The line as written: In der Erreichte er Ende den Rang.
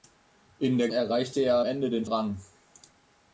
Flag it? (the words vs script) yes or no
no